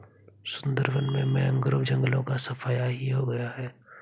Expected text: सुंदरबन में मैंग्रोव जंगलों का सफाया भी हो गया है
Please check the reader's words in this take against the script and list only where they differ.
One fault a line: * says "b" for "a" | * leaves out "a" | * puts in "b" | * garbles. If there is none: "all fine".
* says "ही" for "भी"